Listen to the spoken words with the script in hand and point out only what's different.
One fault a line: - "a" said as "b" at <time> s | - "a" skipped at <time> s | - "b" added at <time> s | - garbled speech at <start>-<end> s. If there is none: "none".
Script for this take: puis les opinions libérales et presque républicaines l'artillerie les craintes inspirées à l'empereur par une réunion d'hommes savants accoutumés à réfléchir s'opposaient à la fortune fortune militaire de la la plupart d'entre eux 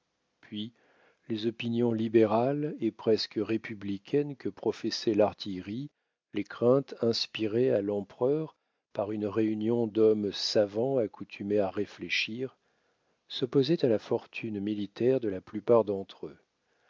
- "que professait" added at 4.3 s
- "fortune" skipped at 14.6 s
- "la" skipped at 15.4 s